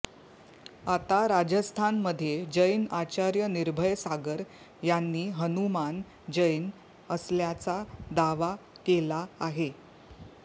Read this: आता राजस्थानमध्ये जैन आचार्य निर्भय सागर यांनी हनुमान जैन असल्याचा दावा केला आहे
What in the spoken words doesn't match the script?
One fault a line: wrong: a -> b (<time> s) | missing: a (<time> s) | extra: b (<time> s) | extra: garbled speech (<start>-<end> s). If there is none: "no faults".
no faults